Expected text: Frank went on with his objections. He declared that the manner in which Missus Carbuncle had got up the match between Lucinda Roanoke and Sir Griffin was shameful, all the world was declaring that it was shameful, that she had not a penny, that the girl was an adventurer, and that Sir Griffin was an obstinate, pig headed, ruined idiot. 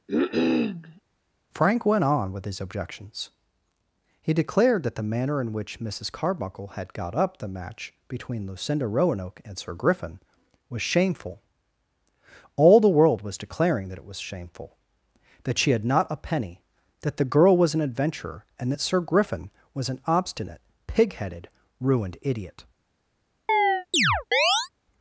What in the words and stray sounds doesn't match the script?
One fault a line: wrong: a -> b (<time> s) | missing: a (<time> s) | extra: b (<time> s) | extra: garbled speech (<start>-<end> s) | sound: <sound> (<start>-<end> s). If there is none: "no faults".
sound: cough (0.1-1.0 s)
sound: chirp (23.5-24.7 s)